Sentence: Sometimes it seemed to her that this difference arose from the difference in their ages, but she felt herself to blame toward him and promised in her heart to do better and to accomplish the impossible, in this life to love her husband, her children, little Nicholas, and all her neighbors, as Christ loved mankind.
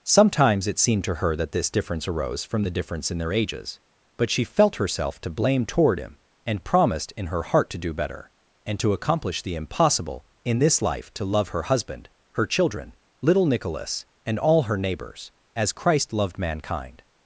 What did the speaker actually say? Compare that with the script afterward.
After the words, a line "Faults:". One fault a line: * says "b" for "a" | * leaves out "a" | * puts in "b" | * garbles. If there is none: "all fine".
Sometimes it seemed to her that this difference arose from the difference in their ages, but she felt herself to blame toward him and promised in her heart to do better and to accomplish the impossible, in this life to love her husband, her children, little Nicholas, and all her neighbors, as Christ loved mankind.
Faults:
all fine